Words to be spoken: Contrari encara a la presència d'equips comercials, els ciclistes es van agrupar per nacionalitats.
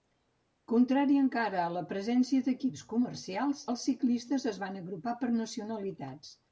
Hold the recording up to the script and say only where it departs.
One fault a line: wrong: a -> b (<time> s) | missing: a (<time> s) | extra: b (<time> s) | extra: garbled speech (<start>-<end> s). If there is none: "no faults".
no faults